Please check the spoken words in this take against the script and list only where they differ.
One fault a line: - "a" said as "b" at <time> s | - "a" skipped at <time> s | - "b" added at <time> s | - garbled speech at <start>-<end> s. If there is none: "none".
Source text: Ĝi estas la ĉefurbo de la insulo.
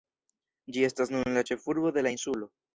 - "nun" added at 1.2 s